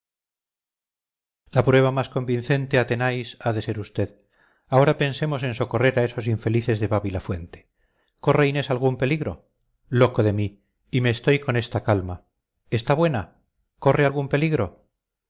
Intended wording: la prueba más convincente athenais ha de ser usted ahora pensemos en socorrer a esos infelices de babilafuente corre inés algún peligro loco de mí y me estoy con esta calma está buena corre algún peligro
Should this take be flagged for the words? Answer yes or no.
no